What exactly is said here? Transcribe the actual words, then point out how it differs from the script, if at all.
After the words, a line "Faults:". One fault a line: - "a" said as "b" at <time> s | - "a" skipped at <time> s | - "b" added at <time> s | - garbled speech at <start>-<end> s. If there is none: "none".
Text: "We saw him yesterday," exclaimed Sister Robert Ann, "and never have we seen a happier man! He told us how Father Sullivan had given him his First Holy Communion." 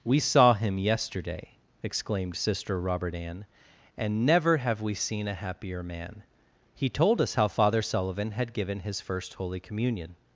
"We saw him yesterday," exclaimed Sister Robert Ann, "and never have we seen a happier man! He told us how Father Sullivan had given his First Holy Communion."
Faults:
- "him" skipped at 8.8 s